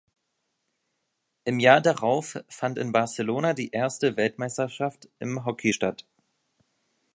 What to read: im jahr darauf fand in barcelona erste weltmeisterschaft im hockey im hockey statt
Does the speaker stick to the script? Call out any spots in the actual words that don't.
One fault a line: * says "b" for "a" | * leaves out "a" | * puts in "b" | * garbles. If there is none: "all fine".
* puts in "die"
* leaves out "im hockey"